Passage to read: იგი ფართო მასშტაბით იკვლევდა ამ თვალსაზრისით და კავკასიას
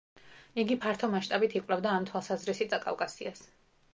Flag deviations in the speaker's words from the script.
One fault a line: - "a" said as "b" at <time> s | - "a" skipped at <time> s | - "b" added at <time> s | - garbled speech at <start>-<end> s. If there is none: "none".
none